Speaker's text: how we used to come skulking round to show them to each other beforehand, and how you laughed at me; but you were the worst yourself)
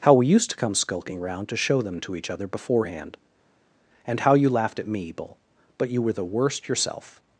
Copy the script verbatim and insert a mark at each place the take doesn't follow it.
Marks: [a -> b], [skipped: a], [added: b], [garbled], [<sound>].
how we used to come skulking round to show them to each other beforehand, and how you laughed at me; [added: bull] but you were the worst yourself)